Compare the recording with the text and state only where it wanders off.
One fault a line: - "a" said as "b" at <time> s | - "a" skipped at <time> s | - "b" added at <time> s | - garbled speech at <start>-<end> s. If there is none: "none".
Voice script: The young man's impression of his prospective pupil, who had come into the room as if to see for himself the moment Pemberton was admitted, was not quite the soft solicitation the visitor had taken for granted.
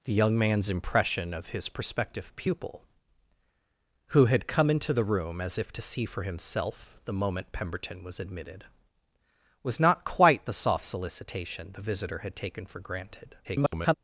- garbled speech at 13.4-13.9 s